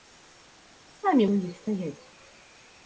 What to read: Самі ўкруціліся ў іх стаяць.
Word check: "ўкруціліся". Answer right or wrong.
wrong